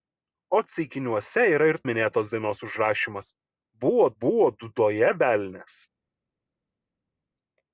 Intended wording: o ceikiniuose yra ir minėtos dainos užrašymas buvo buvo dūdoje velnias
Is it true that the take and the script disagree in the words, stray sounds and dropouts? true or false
false